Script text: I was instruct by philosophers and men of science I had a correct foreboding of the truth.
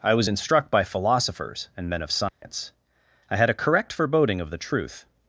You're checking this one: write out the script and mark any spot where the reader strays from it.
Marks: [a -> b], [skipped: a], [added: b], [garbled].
I was instruct by philosophers and men of science I had a correct foreboding of the truth.